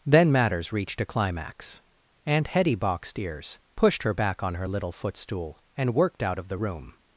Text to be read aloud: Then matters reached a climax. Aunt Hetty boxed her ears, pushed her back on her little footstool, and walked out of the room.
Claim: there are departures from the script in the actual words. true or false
true